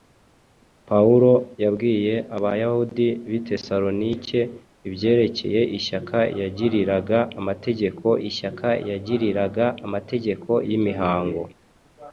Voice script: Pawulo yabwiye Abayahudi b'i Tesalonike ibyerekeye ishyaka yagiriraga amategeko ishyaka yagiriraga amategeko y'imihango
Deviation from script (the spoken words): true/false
false